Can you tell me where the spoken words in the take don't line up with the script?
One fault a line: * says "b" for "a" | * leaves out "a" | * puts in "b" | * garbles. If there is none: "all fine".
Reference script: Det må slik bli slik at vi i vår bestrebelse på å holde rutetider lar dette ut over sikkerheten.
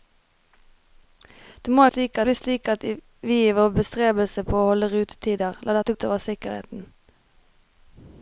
all fine